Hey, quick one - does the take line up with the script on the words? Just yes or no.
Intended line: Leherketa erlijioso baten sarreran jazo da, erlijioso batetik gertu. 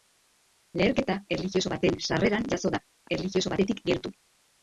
yes